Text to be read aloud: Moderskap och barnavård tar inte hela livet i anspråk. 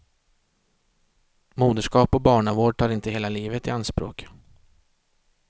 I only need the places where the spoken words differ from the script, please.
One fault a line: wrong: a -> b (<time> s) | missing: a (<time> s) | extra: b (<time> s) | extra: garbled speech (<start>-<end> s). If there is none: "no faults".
no faults